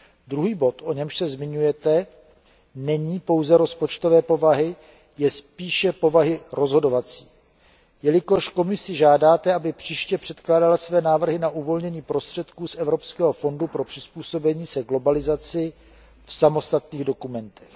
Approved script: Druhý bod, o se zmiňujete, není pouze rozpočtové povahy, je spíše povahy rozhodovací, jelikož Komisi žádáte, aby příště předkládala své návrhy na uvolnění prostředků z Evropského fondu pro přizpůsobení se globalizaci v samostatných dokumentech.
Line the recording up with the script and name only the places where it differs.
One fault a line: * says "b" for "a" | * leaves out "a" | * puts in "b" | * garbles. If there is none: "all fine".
* puts in "němž"